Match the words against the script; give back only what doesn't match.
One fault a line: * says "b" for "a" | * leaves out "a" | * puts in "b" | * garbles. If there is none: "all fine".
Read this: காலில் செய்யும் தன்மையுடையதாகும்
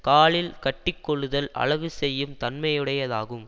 * puts in "கட்டிக்கொள்ளுதல் அழகு"